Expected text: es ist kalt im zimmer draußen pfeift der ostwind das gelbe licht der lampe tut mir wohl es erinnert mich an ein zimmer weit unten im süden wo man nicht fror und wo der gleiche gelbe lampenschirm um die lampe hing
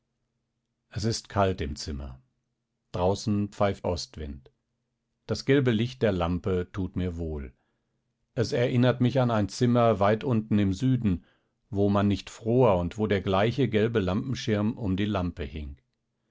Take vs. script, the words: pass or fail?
fail